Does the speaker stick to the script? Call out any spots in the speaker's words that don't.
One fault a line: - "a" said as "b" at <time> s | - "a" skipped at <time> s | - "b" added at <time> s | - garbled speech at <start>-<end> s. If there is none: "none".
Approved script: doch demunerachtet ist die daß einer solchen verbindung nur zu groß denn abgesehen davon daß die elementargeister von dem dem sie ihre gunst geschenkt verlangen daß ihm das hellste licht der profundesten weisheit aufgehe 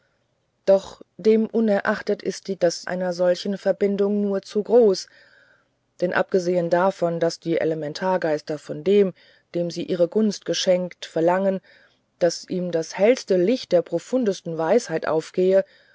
none